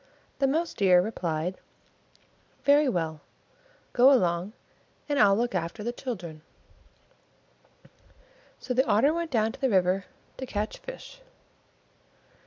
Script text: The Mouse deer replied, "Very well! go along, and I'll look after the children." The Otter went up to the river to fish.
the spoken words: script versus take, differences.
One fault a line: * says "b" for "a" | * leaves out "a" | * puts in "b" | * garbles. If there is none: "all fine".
* puts in "So"
* says "down" for "up"
* puts in "catch"